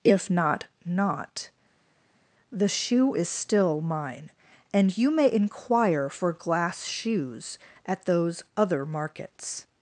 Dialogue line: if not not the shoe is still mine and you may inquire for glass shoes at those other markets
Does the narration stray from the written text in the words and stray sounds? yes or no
no